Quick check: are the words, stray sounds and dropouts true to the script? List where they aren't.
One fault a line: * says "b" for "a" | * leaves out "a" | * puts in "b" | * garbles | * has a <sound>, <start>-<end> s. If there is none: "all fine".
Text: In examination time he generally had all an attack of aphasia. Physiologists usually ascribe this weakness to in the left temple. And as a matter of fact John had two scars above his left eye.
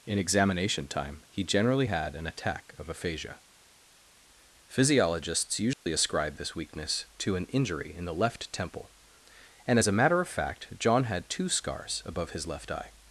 * leaves out "all"
* has a dropout, 5.7-5.9 s
* puts in "an injury"